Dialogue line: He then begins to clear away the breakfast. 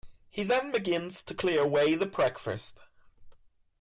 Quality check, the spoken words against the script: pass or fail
pass